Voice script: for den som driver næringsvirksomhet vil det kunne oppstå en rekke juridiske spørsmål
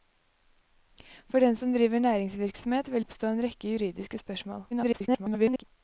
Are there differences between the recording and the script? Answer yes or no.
yes